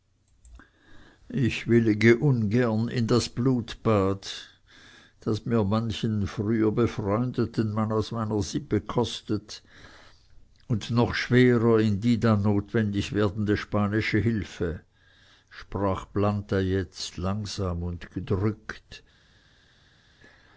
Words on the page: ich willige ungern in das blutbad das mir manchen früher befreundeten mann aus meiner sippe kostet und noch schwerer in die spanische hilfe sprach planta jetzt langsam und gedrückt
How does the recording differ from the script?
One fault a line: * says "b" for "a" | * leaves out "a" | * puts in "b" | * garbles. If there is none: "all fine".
* puts in "dann notwendig werdende"